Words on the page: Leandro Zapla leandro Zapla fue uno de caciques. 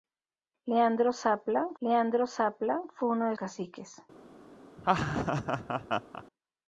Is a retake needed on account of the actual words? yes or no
no